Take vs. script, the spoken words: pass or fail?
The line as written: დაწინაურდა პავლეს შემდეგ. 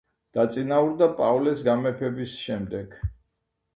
fail